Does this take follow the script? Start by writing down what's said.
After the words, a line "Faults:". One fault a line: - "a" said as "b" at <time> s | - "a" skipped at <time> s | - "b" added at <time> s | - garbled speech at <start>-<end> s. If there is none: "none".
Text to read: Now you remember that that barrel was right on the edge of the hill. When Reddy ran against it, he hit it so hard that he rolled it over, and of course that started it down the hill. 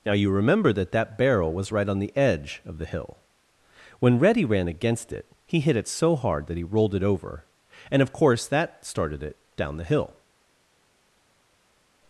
Now you remember that that barrel was right on the edge of the hill. When Reddy ran against it, he hit it so hard that he rolled it over, and of course that started it down the hill.
Faults:
none